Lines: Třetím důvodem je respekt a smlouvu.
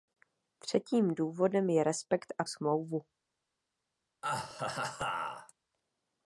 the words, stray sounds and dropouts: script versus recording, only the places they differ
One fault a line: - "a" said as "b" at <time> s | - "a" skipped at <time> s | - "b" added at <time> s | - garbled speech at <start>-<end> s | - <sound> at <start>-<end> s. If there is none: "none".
- laugh at 4.2-5.5 s